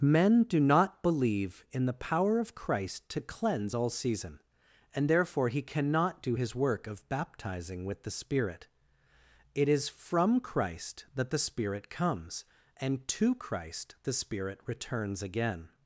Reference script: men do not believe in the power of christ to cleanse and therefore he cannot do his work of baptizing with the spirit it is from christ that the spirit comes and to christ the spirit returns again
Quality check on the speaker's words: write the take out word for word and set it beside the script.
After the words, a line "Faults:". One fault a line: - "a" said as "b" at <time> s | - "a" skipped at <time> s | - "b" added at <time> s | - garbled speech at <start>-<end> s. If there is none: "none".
men do not believe in the power of christ to cleanse all season and therefore he cannot do his work of baptizing with the spirit it is from christ that the spirit comes and to christ the spirit returns again
Faults:
- "all season" added at 3.7 s